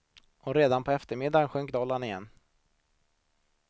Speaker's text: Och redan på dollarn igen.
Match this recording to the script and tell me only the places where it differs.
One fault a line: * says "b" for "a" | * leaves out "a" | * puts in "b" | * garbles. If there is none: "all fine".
* puts in "eftermiddagen sjönk"